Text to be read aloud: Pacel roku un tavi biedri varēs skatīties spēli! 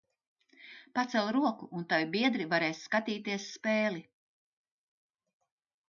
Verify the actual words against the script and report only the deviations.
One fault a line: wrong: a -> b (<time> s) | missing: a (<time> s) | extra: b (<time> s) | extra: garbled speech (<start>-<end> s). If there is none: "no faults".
no faults